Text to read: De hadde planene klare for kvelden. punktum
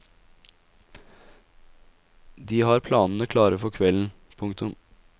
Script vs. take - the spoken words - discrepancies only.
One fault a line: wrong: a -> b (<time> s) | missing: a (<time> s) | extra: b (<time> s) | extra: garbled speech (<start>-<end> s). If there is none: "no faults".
wrong: hadde -> har (2.6 s)